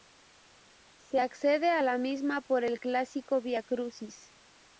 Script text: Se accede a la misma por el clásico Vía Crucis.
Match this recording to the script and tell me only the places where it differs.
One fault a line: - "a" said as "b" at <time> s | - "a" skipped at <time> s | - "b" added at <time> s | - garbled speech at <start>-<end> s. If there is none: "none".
none